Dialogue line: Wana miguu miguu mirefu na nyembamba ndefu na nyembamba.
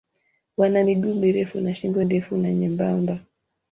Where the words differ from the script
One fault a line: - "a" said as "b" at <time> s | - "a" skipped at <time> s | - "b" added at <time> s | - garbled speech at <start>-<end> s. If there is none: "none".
- "miguu" skipped at 1.1 s
- "nyembamba" said as "shingo" at 1.7 s